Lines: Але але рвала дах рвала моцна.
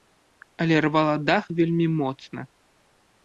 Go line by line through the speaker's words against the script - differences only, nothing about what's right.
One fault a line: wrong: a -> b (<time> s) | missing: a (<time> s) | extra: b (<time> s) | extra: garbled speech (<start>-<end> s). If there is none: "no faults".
missing: але (0.8 s)
wrong: рвала -> вельмі (1.6 s)